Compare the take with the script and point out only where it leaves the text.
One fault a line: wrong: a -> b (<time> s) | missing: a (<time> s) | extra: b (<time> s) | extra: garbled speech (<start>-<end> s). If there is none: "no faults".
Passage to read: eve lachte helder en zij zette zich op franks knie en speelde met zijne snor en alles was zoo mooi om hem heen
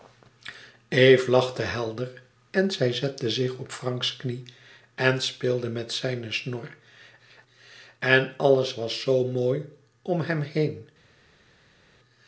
no faults